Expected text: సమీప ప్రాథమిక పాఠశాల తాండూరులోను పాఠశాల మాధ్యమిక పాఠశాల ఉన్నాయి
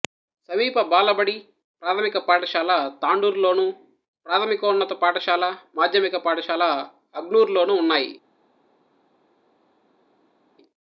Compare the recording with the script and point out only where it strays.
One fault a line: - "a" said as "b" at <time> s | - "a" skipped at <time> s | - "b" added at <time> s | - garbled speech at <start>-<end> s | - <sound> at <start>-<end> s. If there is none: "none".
- "బాలబడి" added at 0.9 s
- "ప్రాథమికోన్నత" added at 4.2 s
- "అగ్నూర్లోనూ" added at 7.2 s